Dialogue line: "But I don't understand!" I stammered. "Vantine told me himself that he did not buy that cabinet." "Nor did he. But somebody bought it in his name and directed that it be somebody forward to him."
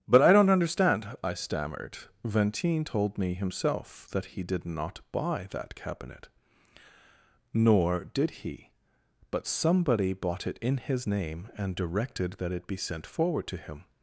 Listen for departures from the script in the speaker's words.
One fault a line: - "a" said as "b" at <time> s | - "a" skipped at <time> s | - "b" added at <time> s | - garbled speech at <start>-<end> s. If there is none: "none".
- "somebody" said as "sent" at 12.8 s